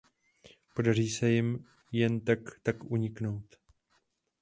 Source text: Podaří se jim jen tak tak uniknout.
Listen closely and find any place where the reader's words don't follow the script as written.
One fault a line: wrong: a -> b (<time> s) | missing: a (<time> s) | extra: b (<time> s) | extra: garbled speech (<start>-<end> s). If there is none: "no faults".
no faults